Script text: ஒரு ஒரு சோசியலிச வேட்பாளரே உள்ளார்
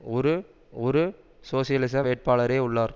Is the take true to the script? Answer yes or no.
yes